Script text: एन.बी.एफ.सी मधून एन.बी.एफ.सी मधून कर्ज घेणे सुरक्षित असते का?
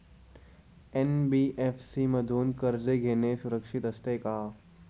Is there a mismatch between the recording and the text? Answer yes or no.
yes